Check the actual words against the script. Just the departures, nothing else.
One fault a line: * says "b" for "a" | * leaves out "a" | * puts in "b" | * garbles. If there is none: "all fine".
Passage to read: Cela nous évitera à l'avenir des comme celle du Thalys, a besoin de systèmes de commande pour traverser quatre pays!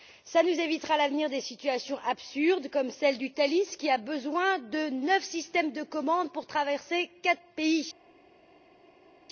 * puts in "situations absurdes"
* puts in "qui"
* puts in "neuf"